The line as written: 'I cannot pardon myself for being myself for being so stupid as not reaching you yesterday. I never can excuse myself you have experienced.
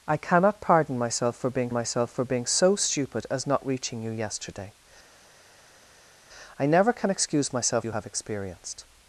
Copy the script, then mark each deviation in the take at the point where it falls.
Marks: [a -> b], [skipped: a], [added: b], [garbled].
'I cannot pardon myself for being myself for being so stupid as not reaching you yesterday. I never can excuse myself you have experienced.